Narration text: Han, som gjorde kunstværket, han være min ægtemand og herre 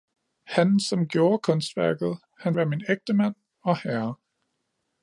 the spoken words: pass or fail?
pass